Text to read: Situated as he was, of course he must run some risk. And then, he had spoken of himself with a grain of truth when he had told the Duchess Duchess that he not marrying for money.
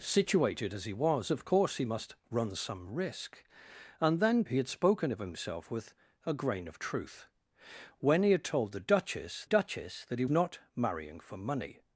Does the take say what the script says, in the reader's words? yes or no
yes